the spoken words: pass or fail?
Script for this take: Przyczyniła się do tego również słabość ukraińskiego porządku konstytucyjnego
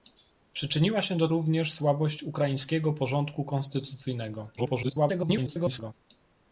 fail